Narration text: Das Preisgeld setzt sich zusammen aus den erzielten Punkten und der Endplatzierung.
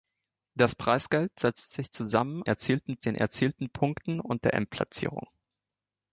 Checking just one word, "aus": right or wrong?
wrong